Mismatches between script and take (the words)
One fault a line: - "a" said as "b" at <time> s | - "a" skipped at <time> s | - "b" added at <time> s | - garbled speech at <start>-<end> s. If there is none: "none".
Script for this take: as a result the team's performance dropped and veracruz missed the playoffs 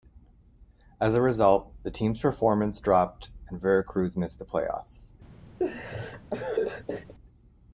none